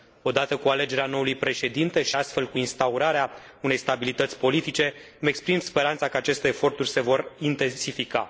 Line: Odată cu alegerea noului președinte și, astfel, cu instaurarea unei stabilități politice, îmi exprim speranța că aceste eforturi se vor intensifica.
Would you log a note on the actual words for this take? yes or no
no